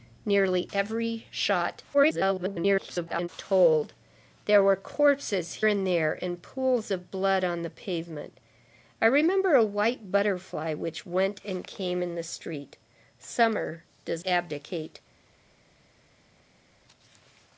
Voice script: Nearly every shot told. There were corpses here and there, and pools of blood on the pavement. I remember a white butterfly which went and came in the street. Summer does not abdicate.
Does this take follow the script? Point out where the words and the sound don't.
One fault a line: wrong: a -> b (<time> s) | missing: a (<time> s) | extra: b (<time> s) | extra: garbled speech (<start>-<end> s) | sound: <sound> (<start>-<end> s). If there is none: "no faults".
extra: garbled speech (1.9-3.3 s)
missing: here (5.5 s)
missing: not (14.2 s)